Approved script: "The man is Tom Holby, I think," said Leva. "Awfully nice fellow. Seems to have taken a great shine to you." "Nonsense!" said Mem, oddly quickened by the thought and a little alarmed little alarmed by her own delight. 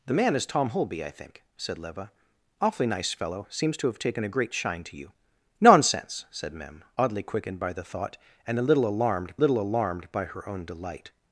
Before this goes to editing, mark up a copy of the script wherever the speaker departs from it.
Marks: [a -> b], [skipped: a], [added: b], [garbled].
"The man is Tom Holby, I think," said Leva. "Awfully nice fellow. Seems to have taken a great shine to you." "Nonsense!" said Mem, oddly quickened by the thought and a little alarmed little alarmed by her own delight.